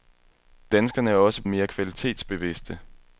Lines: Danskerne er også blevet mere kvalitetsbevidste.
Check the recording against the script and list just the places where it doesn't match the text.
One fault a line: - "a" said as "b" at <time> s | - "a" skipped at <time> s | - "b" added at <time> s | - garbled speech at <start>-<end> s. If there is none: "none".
- "blevet" skipped at 1.4 s